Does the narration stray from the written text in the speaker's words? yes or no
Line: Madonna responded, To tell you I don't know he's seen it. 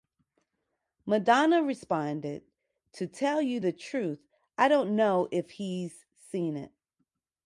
yes